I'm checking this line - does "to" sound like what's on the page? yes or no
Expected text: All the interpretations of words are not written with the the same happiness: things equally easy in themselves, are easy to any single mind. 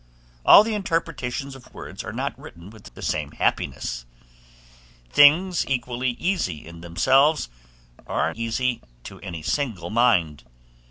yes